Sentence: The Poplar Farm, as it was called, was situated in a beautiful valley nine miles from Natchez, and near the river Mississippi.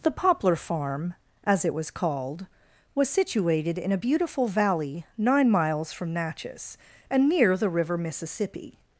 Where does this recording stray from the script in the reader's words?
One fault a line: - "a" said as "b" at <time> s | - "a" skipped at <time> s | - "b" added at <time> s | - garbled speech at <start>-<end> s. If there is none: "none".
none